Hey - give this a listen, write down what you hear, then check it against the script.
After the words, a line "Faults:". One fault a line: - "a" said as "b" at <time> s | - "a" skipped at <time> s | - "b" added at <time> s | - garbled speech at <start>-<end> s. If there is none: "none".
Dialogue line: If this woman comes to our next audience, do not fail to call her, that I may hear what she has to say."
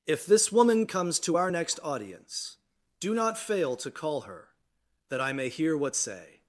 If this woman comes to our next audience, do not fail to call her, that I may hear what say."
Faults:
- "she has to" skipped at 6.0 s